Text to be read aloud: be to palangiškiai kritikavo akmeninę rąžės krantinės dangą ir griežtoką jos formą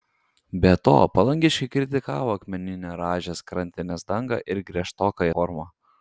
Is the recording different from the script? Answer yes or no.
yes